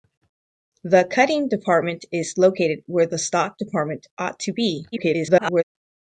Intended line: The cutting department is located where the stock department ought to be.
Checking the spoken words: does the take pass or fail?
fail